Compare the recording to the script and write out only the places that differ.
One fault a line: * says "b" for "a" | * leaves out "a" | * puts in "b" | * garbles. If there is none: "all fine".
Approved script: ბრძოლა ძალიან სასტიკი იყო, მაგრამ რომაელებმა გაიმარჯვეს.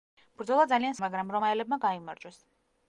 * leaves out "სასტიკი იყო"